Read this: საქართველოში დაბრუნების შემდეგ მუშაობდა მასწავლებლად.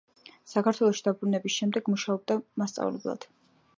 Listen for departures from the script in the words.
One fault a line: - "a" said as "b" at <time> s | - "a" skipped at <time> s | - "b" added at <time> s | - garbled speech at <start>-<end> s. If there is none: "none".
none